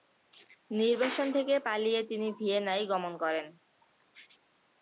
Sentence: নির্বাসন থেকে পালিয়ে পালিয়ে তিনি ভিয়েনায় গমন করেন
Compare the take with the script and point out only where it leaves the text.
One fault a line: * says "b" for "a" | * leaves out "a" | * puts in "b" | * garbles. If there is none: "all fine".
* leaves out "পালিয়ে"